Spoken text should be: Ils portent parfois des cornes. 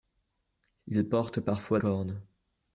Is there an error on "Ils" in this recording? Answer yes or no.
no